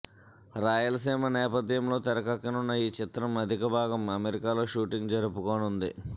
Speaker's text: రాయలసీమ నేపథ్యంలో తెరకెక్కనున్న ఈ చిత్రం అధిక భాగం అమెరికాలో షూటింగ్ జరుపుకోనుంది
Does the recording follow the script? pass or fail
pass